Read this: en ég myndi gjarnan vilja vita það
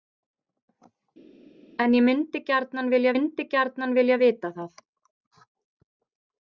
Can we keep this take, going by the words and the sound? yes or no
no